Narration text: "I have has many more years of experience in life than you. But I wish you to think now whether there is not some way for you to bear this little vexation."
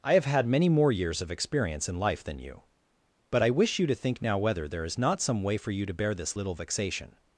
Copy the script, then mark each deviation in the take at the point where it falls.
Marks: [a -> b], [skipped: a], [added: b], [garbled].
"I have [has -> had] many more years of experience in life than you. But I wish you to think now whether there is not some way for you to bear this little vexation."